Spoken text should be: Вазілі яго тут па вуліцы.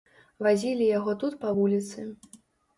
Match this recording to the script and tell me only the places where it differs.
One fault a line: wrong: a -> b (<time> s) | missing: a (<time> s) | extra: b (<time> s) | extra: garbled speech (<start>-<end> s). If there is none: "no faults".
no faults